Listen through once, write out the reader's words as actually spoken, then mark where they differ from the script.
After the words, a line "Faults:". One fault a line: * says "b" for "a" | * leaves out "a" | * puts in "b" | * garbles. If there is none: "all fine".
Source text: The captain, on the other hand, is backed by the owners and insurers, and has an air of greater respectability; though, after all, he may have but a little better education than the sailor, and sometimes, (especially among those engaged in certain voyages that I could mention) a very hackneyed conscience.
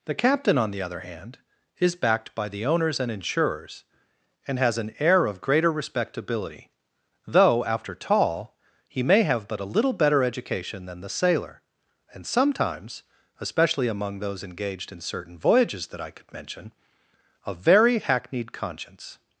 The captain, on the other hand, is backed by the owners and insurers, and has an air of greater respectability; though, after tall, he may have but a little better education than the sailor, and sometimes, (especially among those engaged in certain voyages that I could mention) a very hackneyed conscience.
Faults:
* says "tall" for "all"